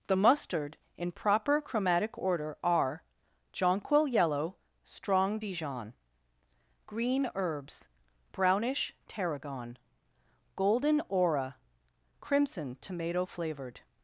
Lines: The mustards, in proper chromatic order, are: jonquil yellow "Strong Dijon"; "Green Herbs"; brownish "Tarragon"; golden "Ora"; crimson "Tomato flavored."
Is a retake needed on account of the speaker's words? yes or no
yes